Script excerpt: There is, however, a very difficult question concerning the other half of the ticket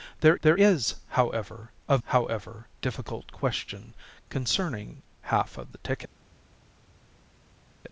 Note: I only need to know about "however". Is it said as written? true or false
true